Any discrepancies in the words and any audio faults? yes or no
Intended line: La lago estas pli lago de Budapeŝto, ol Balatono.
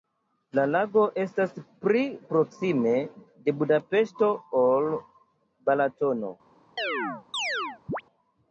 yes